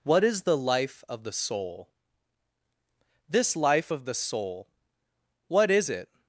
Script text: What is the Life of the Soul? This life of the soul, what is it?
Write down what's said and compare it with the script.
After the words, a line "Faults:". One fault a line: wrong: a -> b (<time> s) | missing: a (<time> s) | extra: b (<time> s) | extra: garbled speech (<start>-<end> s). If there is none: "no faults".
What is the Life of the Soul? This life of the soul, what is it?
Faults:
no faults